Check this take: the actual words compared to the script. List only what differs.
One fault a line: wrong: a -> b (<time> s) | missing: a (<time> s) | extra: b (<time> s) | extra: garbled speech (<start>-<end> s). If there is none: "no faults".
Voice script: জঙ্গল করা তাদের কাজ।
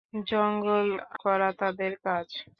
no faults